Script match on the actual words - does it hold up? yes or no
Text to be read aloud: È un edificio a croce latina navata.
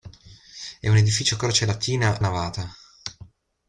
yes